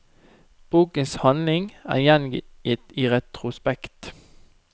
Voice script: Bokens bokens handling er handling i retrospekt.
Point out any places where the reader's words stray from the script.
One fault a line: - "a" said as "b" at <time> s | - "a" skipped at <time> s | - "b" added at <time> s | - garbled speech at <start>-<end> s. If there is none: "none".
- "bokens" skipped at 1.1 s
- "handling" said as "gjengitt" at 2.0 s